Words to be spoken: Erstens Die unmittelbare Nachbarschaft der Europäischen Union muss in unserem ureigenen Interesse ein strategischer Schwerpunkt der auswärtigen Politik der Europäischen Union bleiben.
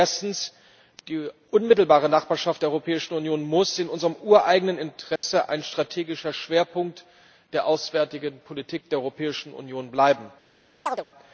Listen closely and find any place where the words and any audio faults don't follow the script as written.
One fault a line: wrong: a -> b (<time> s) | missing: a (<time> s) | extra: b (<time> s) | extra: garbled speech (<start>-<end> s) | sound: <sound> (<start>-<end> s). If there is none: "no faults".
sound: dropout (5.2-5.2 s)
sound: chirp (10.9-11.1 s)